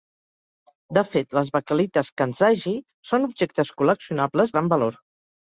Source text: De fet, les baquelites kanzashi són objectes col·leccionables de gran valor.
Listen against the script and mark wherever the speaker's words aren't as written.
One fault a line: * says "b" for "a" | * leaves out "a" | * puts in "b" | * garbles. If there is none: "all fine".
* leaves out "de"